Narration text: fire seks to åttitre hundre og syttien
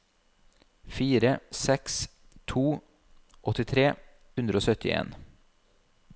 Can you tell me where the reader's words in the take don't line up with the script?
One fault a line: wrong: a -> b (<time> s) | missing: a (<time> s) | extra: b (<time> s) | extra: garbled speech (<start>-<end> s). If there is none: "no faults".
no faults